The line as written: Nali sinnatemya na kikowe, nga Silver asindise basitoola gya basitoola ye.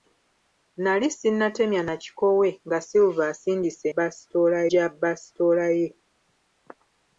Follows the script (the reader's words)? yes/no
yes